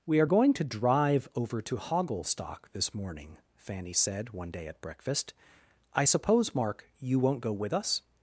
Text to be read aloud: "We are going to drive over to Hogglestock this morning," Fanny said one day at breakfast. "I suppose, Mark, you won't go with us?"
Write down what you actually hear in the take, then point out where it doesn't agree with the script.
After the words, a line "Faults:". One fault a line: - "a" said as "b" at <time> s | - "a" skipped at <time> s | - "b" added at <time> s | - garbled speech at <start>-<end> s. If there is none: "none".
"We are going to drive over to Hogglestock this morning," Fanny said one day at breakfast. "I suppose, Mark, you won't go with us?"
Faults:
none